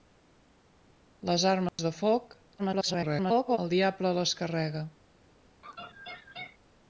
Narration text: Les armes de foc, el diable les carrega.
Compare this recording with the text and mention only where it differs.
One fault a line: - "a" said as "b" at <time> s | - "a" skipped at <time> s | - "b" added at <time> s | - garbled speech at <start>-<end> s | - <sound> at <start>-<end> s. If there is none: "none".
- dropout at 1.7-1.8 s
- garbled speech at 2.6-3.6 s
- laugh at 5.6-6.6 s